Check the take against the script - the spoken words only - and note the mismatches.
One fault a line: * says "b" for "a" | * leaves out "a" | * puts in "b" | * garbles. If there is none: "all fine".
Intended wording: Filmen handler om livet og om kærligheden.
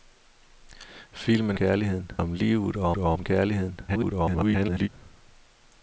* says "kærligheden" for "handler"
* puts in "og"
* garbles